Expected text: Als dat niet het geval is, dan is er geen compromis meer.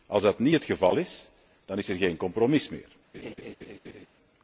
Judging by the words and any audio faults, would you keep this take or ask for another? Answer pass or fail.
fail